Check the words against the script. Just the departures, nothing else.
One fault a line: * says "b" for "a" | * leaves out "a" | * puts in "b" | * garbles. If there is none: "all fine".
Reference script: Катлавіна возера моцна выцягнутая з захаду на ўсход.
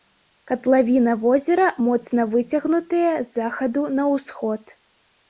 all fine